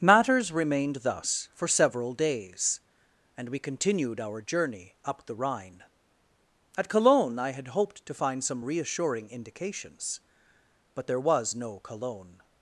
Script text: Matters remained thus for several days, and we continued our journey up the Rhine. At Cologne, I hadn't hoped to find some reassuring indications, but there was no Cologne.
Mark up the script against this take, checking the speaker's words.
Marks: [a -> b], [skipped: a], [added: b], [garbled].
Matters remained thus for several days, and we continued our journey up the Rhine. At Cologne, I [hadn't -> had] hoped to find some reassuring indications, but there was no Cologne.